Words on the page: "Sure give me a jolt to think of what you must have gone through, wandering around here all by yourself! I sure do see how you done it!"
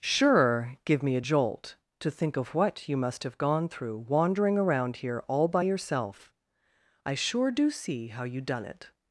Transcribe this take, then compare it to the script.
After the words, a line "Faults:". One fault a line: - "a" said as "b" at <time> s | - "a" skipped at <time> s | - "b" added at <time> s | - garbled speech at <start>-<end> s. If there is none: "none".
"Sure give me a jolt to think of what you must have gone through, wandering around here all by yourself! I sure do see how you done it!"
Faults:
none